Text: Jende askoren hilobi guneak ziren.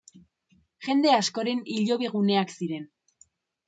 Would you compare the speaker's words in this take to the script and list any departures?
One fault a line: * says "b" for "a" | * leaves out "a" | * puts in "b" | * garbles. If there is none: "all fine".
all fine